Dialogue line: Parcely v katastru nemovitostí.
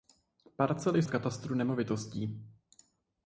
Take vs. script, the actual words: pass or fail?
pass